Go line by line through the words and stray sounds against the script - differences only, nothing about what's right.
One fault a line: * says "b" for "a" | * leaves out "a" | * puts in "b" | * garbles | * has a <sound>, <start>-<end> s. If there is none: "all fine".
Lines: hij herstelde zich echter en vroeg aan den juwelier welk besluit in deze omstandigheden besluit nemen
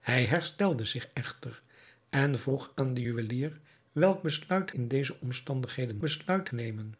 all fine